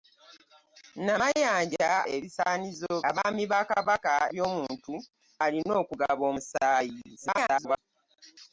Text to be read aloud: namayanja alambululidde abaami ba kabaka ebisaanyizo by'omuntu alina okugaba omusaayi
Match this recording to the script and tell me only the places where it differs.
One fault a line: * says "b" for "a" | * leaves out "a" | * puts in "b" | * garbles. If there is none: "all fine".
* says "ebisaanyizo" for "alambululidde"
* leaves out "ebisaanyizo"
* garbles